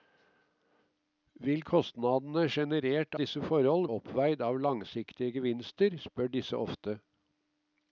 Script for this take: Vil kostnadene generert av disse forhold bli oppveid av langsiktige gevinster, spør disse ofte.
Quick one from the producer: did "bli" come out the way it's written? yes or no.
no